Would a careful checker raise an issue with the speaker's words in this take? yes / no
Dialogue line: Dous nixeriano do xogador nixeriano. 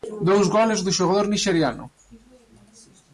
yes